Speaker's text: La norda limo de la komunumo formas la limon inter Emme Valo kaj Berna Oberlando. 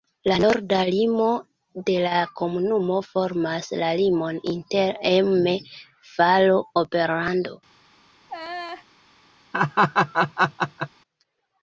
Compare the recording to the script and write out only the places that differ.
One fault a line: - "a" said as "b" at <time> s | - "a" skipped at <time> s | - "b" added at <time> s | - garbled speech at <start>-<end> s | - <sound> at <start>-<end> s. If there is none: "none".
- "kaj Berna" skipped at 6.6 s
- laugh at 8.3-8.8 s
- laugh at 9.5-10.9 s